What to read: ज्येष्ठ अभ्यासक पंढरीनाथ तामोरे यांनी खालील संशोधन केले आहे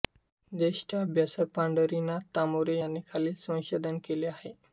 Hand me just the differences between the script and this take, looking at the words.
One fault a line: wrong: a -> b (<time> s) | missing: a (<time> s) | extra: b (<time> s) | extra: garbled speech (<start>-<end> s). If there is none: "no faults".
no faults